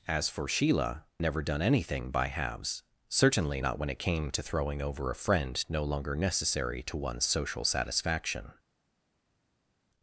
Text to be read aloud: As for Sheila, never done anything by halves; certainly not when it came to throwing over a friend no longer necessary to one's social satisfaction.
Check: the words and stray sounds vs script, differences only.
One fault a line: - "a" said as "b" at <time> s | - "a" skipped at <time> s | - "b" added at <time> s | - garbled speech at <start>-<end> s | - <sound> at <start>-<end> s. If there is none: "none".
none